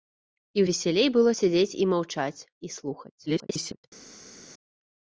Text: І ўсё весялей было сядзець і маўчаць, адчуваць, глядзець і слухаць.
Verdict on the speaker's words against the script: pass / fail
fail